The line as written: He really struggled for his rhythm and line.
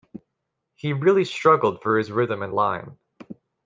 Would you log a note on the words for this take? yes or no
no